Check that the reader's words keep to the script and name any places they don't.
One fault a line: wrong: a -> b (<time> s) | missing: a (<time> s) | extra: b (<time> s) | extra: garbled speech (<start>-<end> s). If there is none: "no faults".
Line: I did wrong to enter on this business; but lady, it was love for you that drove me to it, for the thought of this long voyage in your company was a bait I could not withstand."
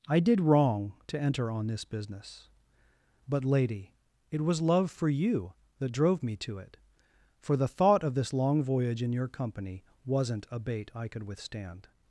wrong: was -> wasn't (10.1 s)
missing: not (11.2 s)